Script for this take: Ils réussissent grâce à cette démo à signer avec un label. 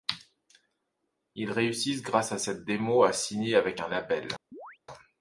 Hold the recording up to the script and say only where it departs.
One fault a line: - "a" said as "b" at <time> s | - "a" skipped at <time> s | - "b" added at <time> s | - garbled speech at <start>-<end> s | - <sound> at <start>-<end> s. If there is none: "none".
- chirp at 4.5-4.8 s